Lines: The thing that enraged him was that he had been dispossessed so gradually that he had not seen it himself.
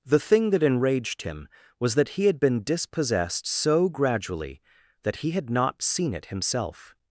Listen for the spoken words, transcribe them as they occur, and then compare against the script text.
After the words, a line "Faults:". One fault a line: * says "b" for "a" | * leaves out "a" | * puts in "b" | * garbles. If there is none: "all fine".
The thing that enraged him was that he had been dispossessed so gradually that he had not seen it himself.
Faults:
all fine